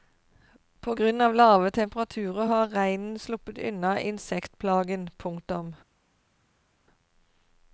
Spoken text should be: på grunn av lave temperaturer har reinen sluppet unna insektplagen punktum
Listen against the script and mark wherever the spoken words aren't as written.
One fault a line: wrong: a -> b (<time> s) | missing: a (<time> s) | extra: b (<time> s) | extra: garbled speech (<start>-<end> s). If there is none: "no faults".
no faults